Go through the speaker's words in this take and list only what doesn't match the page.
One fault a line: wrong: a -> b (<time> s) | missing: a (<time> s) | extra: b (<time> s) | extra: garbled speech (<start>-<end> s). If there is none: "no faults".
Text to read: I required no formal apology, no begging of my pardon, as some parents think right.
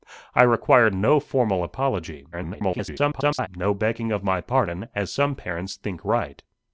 extra: garbled speech (2.3-3.5 s)